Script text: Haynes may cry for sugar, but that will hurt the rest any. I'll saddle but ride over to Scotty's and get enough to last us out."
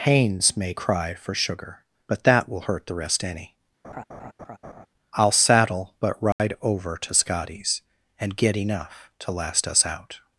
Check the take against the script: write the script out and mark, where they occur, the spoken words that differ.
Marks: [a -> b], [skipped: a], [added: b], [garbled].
Haynes may cry for sugar, but that will hurt the rest any. I'll saddle but ride over to Scotty's and get enough to last us out."